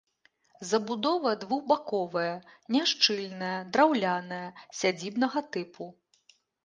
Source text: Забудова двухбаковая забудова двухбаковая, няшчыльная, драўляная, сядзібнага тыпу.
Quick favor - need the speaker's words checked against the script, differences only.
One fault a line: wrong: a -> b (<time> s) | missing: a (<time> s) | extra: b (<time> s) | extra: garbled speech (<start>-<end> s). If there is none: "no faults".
missing: забудова двухбаковая (2.3 s)